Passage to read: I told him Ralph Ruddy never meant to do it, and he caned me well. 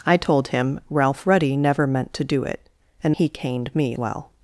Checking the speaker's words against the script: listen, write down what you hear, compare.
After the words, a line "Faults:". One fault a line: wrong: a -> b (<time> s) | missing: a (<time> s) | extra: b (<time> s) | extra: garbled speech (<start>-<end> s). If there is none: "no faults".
I told him Ralph Ruddy never meant to do it, and he caned me well.
Faults:
no faults